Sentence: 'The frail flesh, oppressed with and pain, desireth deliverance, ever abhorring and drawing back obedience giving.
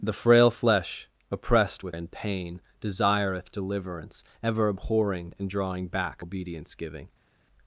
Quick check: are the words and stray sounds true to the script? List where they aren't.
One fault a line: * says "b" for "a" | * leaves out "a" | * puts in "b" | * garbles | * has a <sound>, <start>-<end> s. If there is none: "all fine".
all fine